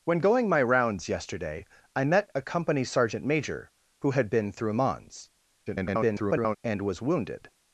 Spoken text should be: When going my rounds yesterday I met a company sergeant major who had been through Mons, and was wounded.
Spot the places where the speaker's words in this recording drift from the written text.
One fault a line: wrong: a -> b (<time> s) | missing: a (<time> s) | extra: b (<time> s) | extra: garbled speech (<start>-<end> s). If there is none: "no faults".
extra: garbled speech (5.7-6.6 s)